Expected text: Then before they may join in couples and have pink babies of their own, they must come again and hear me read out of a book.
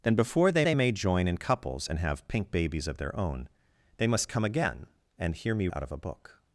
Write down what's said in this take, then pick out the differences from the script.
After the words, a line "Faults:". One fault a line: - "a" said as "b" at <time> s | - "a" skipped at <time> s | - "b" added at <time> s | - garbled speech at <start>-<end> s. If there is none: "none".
Then before they they may join in couples and have pink babies of their own, they must come again and hear me out of a book.
Faults:
- "they" added at 0.6 s
- "read" skipped at 5.7 s